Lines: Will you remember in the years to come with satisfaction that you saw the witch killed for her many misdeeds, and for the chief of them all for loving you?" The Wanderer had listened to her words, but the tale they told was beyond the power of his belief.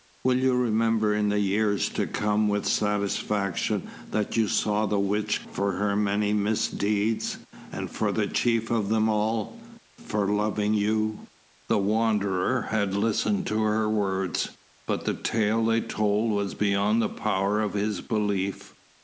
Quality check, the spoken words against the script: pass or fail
fail